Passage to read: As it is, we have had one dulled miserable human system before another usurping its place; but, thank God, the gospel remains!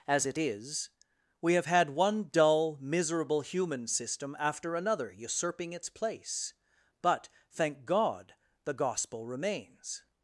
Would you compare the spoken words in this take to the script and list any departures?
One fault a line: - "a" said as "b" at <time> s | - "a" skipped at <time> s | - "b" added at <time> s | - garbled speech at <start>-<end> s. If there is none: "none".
- "dulled" said as "dull" at 2.3 s
- "before" said as "after" at 4.4 s